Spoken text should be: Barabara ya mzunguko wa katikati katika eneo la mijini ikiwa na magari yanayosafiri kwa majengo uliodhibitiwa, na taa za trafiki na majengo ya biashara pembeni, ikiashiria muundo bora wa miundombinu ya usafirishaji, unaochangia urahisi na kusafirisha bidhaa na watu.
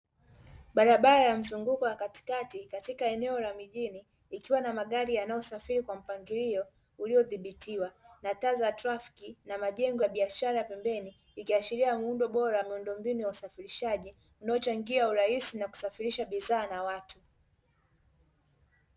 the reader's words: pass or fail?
fail